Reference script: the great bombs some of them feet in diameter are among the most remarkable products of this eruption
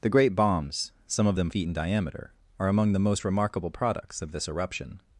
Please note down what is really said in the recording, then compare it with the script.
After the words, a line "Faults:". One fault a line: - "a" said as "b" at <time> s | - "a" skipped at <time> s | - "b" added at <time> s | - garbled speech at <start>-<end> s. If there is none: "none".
the great bombs some of them feet in diameter are among the most remarkable products of this eruption
Faults:
none